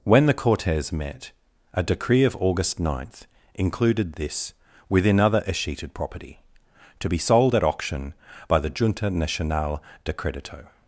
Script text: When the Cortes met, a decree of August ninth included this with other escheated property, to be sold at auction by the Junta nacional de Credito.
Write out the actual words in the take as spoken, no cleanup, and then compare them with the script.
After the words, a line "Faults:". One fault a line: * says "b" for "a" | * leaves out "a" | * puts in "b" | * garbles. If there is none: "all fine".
When the Cortes met, a decree of August ninth included this within other escheated property, to be sold at auction by the Junta nacional de Credito.
Faults:
* says "within" for "with"